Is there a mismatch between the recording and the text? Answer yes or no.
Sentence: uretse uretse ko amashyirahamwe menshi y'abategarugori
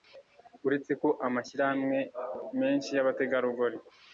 yes